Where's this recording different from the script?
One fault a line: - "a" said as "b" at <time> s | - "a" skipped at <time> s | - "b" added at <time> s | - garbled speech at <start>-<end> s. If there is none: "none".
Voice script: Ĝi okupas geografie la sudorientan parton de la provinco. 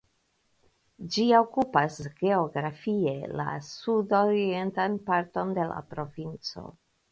none